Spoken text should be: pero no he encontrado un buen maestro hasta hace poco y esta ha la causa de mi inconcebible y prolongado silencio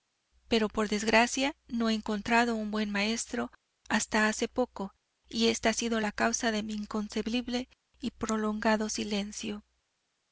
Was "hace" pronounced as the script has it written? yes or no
yes